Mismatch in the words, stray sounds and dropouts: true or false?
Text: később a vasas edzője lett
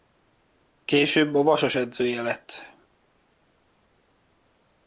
false